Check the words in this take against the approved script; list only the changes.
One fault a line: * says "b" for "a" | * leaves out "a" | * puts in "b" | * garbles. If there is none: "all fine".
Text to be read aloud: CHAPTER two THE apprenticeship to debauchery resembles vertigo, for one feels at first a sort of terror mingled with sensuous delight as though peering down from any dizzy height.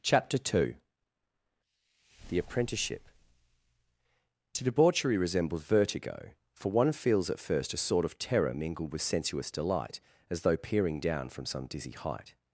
* says "some" for "any"